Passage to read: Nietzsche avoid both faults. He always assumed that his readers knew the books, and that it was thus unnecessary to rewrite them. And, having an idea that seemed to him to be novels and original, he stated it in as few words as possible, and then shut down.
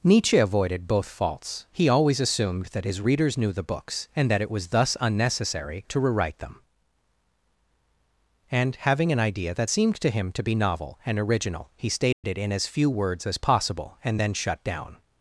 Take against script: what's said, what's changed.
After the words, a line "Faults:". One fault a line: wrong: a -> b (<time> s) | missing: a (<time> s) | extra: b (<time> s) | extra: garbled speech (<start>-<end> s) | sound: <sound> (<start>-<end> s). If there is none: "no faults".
Nietzsche avoided both faults. He always assumed that his readers knew the books, and that it was thus unnecessary to rewrite them. And, having an idea that seemed to him to be novel and original, he stated it in as few words as possible, and then shut down.
Faults:
wrong: avoid -> avoided (0.4 s)
wrong: novels -> novel (10.5 s)
sound: dropout (12.1-12.2 s)